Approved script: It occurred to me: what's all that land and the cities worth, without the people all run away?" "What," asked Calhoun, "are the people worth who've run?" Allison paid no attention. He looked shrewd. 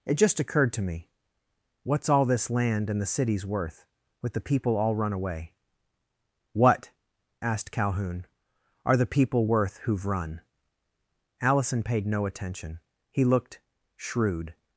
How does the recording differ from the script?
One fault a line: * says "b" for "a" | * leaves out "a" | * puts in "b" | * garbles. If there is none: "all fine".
* puts in "just"
* says "this" for "that"
* says "with" for "without"